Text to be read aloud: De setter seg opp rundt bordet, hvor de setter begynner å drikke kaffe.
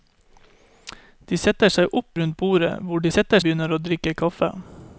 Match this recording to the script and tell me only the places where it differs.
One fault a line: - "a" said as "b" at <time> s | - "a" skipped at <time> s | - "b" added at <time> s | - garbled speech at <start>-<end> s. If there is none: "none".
none